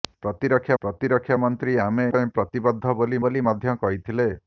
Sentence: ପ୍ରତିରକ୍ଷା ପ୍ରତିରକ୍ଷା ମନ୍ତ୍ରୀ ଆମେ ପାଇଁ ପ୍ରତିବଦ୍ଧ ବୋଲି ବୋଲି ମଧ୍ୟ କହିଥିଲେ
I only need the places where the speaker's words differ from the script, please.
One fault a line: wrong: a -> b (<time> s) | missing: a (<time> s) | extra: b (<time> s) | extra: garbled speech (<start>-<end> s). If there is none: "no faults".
no faults